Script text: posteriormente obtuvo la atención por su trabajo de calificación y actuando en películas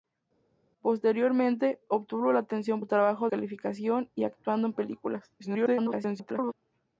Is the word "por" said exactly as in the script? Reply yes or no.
no